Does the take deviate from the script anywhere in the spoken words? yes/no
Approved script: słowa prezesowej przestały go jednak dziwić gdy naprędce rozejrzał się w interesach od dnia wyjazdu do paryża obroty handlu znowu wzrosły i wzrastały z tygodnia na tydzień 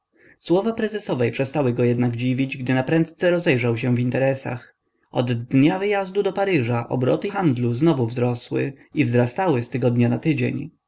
no